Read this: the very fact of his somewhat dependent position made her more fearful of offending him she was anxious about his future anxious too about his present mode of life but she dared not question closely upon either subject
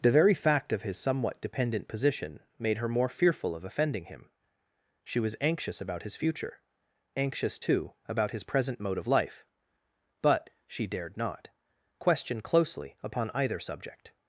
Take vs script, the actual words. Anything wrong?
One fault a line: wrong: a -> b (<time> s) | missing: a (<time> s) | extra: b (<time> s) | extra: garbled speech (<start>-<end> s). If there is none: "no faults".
no faults